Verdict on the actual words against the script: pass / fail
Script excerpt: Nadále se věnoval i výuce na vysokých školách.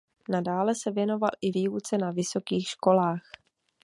pass